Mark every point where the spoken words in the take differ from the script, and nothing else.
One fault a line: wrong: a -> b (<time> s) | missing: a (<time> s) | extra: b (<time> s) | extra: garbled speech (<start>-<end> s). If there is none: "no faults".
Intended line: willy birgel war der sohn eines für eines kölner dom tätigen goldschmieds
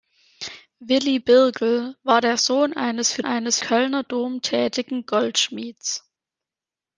no faults